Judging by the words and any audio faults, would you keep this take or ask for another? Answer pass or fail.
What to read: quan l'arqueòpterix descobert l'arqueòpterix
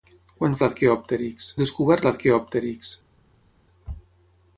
pass